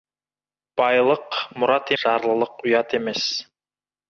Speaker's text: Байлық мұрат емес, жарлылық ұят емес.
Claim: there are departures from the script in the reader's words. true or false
true